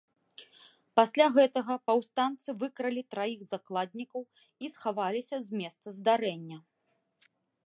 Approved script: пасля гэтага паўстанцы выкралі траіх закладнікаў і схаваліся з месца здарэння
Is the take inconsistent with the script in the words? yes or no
no